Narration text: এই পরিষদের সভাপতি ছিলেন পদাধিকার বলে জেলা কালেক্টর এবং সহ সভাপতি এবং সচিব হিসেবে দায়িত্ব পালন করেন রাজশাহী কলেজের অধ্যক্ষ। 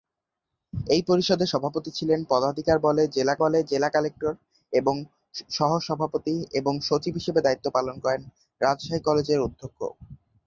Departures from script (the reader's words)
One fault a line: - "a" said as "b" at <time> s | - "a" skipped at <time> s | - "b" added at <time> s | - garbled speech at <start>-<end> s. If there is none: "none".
- "বলে জেলা" added at 3.4 s